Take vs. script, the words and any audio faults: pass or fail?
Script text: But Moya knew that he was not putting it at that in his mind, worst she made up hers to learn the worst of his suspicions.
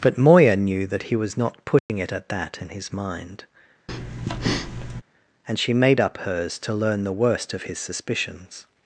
fail